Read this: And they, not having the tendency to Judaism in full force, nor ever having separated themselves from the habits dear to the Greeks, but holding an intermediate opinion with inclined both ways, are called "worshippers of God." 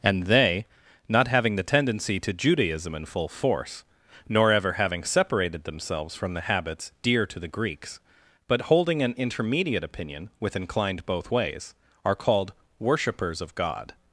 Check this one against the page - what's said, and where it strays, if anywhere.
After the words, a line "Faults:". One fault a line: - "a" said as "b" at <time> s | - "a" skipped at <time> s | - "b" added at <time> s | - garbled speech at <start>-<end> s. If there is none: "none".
And they, not having the tendency to Judaism in full force, nor ever having separated themselves from the habits dear to the Greeks, but holding an intermediate opinion with inclined both ways, are called "worshippers of God."
Faults:
none